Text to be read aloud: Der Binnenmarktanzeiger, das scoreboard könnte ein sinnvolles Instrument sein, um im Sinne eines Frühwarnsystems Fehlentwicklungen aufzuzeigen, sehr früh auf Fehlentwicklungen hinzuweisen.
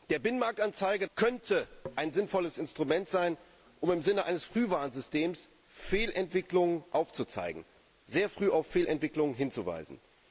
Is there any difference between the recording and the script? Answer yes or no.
yes